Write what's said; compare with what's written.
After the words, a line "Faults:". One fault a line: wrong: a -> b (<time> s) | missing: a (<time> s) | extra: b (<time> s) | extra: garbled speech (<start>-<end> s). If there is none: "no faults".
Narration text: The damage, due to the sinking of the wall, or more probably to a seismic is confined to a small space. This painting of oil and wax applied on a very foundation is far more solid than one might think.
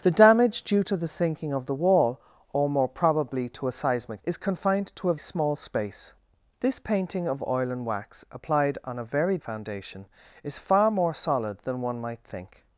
The damage, due to the sinking of the wall, or more probably to a seismic is confined to a small space. This painting of oil and wax applied on a very foundation is far more solid than one might think.
Faults:
no faults